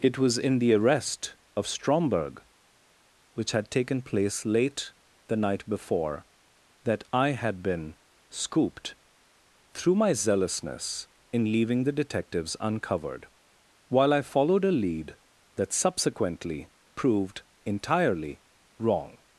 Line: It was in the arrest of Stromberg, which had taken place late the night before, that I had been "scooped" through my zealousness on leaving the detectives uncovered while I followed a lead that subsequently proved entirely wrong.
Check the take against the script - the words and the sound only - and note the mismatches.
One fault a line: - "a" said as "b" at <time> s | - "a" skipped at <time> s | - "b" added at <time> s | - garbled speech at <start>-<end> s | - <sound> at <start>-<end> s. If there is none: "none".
- "on" said as "in" at 11.3 s